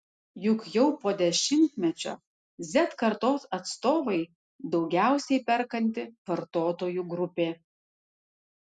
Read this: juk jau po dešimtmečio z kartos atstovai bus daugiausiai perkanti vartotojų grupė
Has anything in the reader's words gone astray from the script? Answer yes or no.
yes